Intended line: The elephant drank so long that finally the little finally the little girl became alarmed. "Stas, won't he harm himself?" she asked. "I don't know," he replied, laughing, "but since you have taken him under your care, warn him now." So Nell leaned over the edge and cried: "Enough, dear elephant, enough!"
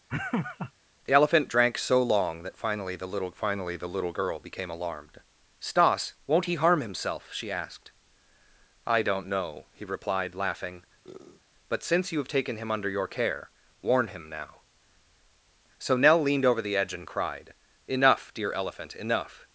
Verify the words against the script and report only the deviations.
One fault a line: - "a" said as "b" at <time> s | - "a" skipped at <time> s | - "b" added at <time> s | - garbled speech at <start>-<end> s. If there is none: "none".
none